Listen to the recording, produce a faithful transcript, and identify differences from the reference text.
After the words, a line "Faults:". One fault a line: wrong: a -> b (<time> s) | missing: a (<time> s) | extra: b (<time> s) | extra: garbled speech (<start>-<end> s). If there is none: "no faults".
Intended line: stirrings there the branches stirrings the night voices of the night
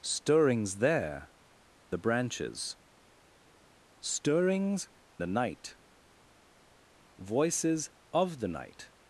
stirrings there the branches stirrings the night voices of the night
Faults:
no faults